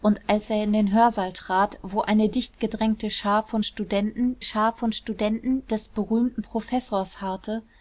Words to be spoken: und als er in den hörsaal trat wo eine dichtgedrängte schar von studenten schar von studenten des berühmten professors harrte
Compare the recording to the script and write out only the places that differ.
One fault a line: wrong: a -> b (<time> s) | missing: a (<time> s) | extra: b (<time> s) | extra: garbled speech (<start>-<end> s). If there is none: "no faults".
no faults